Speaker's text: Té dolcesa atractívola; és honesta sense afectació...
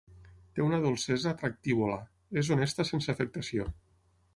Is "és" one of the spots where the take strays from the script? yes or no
no